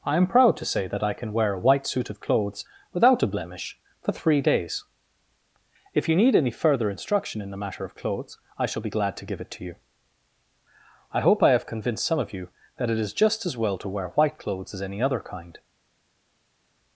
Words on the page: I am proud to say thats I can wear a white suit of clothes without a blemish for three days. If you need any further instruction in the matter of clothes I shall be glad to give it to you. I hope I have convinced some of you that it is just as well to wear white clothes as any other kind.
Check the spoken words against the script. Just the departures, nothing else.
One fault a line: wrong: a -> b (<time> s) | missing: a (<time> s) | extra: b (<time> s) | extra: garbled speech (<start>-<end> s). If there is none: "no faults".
wrong: thats -> that (0.9 s)